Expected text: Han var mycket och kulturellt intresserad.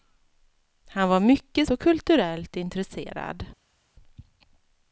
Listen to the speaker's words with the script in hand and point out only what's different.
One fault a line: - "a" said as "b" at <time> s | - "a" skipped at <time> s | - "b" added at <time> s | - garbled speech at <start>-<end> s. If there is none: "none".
none